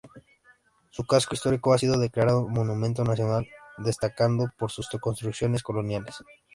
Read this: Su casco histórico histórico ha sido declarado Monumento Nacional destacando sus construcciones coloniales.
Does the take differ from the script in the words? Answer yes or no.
yes